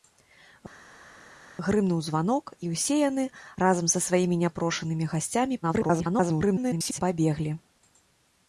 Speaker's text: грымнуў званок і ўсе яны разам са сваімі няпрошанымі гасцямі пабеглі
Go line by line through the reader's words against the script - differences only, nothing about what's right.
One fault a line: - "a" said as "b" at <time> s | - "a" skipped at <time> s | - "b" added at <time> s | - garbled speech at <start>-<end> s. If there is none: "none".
- garbled speech at 5.6-7.0 s